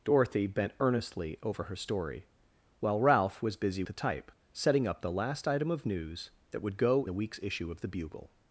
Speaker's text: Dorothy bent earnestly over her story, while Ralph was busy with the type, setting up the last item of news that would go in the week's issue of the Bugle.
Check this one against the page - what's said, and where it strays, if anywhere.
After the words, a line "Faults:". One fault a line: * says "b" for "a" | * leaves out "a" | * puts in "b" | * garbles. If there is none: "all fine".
Dorothy bent earnestly over her story, while Ralph was busy the type, setting up the last item of news that would go the week's issue of the Bugle.
Faults:
* leaves out "with"
* leaves out "in"